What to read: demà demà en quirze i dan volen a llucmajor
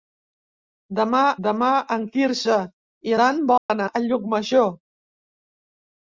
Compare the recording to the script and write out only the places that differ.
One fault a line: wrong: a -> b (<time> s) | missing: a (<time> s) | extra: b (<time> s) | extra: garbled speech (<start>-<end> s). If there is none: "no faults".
no faults